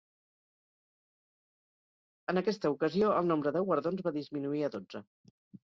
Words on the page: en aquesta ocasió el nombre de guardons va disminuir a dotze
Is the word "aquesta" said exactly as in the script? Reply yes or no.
yes